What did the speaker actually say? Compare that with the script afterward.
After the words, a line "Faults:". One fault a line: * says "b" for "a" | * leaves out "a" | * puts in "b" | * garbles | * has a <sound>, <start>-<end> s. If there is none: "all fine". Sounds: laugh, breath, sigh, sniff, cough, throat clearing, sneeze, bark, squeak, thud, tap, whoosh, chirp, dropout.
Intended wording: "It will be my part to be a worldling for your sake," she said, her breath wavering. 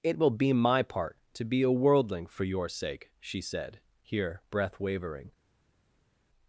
"It will be my part to be a worldling for your sake," she said, here breath wavering.
Faults:
* says "here" for "her"